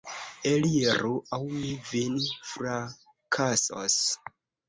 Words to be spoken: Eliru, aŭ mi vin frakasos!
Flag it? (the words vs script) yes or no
no